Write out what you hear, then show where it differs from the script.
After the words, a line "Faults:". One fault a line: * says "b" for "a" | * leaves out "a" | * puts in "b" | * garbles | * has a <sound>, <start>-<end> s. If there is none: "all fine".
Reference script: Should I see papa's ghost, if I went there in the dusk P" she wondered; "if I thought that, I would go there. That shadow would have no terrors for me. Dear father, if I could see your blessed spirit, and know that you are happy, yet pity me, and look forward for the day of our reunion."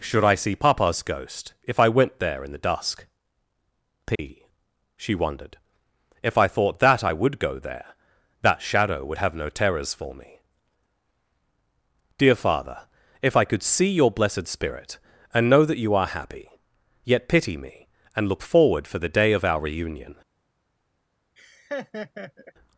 Should I see papa's ghost, if I went there in the dusk P" she wondered; "if I thought that, I would go there. That shadow would have no terrors for me. Dear father, if I could see your blessed spirit, and know that you are happy, yet pity me, and look forward for the day of our reunion."
Faults:
* has a dropout, 4.2-4.2 s
* has a laugh, 21.4-22.5 s